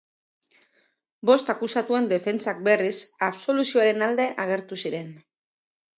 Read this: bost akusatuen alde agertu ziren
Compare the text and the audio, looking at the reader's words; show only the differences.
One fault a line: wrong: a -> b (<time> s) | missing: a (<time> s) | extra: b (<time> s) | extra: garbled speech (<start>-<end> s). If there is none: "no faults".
extra: defentsak berriz absoluzioaren (2.1 s)